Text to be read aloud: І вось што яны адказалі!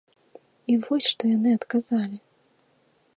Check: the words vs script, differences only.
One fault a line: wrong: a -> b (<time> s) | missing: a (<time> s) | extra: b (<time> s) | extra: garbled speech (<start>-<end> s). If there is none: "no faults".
no faults